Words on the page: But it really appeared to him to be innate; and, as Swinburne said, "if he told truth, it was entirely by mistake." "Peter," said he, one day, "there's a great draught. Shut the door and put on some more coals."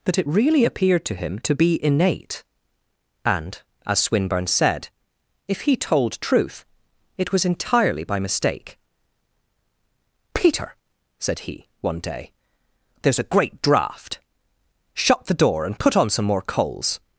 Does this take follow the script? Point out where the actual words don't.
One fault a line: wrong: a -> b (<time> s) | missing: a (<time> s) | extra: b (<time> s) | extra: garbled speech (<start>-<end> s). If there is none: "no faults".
wrong: But -> That (0.1 s)